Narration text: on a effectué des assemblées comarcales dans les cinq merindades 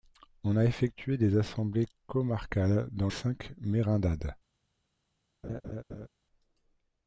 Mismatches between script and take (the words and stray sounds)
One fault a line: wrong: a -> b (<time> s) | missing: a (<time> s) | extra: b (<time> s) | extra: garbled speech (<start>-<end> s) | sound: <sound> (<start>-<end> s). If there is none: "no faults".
missing: les (3.1 s)
sound: laugh (5.4-6.1 s)